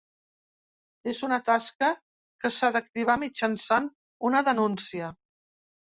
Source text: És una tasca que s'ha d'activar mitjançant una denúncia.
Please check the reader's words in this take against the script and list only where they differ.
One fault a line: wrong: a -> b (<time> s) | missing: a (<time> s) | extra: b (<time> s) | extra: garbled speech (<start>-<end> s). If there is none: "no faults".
no faults